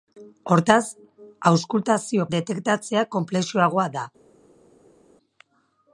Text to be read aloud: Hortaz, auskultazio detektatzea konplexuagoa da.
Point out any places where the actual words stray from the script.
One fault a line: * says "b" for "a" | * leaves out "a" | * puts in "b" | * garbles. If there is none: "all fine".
all fine